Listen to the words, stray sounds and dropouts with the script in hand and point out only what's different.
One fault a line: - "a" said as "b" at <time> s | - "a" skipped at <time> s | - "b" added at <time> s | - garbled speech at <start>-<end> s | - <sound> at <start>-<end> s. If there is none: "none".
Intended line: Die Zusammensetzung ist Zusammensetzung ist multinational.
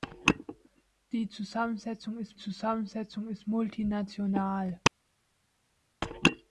none